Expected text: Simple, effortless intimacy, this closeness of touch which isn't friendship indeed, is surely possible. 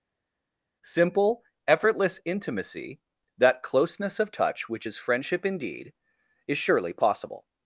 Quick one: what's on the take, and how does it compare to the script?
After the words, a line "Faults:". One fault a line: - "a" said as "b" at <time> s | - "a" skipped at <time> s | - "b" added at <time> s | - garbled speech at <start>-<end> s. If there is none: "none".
Simple, effortless intimacy, that closeness of touch which is friendship indeed, is surely possible.
Faults:
- "this" said as "that" at 3.4 s
- "isn't" said as "is" at 4.8 s